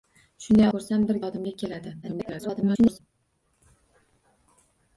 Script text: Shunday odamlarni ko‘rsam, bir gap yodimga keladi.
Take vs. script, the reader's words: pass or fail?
fail